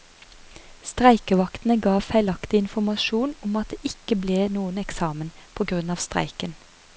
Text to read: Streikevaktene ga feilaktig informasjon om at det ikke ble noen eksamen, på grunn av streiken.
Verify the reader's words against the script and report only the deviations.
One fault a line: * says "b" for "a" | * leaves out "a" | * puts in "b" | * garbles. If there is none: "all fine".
all fine